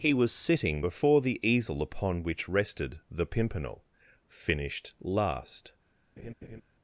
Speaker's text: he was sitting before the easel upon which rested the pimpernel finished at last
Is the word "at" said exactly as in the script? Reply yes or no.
no